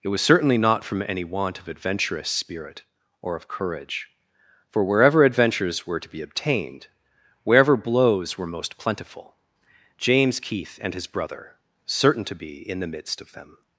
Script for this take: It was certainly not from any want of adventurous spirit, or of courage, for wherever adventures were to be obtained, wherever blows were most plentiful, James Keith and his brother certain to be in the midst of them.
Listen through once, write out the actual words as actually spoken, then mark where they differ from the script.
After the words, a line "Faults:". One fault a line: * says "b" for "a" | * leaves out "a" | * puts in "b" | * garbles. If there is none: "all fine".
It was certainly not from any want of adventurous spirit, or of courage, for wherever adventures were to be obtained, wherever blows were most plentiful, James Keith and his brother certain to be in the midst of them.
Faults:
all fine